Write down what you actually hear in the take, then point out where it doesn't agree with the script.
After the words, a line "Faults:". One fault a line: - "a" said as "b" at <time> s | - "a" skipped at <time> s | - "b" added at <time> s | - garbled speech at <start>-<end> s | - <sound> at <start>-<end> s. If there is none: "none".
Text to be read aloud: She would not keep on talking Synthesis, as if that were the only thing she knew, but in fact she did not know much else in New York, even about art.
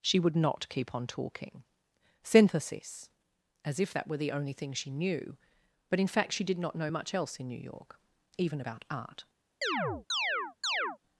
She would not keep on talking Synthesis, as if that were the only thing she knew, but in fact she did not know much else in New York, even about art.
Faults:
- chirp at 9.6-11.0 s